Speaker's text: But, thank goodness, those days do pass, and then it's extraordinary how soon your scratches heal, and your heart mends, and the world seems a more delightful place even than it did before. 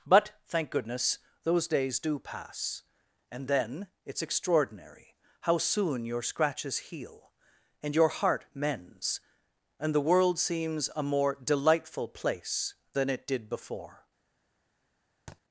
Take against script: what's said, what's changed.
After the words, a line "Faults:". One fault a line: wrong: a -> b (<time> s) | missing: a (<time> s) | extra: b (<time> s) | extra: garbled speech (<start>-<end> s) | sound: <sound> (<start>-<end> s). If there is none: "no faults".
But, thank goodness, those days do pass, and then it's extraordinary how soon your scratches heal, and your heart mends, and the world seems a more delightful place than it did before.
Faults:
missing: even (12.8 s)
sound: thud (15.3-15.4 s)